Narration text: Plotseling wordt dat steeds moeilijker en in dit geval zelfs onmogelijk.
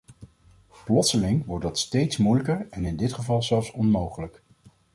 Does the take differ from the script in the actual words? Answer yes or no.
no